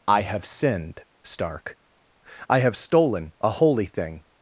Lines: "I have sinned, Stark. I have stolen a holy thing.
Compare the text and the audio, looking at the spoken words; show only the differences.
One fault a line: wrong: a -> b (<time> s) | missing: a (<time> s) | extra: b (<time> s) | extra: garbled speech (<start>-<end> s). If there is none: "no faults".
no faults